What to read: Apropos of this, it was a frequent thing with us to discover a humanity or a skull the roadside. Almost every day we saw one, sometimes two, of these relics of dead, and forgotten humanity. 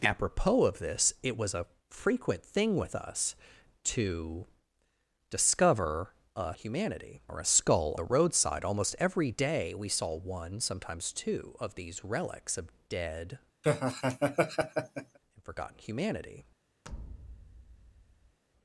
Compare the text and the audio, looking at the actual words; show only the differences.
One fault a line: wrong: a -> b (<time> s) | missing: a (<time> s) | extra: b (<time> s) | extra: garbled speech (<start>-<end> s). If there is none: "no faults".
no faults